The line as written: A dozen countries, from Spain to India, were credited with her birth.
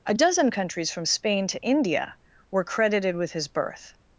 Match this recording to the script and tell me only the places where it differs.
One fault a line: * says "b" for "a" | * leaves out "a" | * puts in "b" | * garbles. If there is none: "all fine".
* says "his" for "her"